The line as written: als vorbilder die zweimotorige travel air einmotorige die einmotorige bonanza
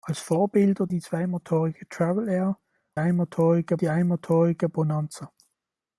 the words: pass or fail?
pass